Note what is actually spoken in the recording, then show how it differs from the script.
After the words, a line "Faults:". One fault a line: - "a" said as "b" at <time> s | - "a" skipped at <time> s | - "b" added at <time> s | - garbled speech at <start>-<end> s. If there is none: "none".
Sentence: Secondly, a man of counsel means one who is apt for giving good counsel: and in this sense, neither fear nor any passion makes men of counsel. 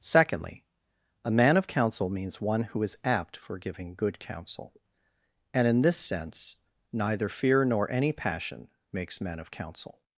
Secondly, a man of counsel means one who is apt for giving good counsel: and in this sense, neither fear nor any passion makes men of counsel.
Faults:
none